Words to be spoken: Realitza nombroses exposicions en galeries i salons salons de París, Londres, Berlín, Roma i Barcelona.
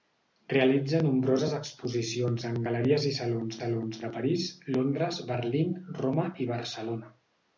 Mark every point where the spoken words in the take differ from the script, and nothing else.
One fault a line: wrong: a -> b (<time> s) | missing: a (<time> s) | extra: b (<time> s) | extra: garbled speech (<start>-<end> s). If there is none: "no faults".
no faults